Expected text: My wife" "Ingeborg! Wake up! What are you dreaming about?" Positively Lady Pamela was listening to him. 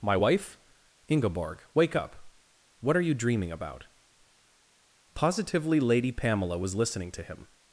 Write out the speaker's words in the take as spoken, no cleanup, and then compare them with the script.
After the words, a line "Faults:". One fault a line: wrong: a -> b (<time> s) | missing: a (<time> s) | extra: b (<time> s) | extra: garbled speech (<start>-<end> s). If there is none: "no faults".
My wife" "Ingeborg! Wake up! What are you dreaming about?" Positively Lady Pamela was listening to him.
Faults:
no faults